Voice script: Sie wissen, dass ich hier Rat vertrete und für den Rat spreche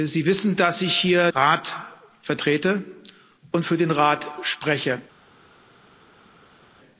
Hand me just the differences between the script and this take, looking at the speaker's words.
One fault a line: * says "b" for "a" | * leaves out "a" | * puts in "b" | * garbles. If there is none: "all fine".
all fine